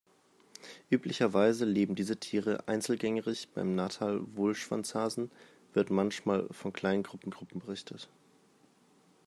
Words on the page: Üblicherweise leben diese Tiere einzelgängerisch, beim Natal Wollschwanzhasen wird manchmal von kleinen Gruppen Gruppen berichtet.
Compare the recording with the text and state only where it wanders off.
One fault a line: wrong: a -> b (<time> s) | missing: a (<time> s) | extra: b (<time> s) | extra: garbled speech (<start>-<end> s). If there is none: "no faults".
no faults